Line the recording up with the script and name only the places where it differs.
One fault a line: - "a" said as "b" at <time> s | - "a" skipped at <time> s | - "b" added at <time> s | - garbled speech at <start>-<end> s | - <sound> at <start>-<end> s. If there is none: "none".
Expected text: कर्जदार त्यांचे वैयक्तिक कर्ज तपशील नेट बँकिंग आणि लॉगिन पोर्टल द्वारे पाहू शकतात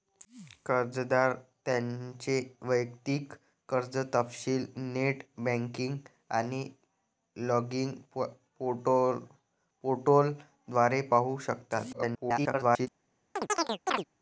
- garbled speech at 11.9-12.9 s
- chirp at 13.4-14.0 s